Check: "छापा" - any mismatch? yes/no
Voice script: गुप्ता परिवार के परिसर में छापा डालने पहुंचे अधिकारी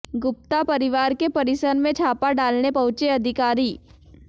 no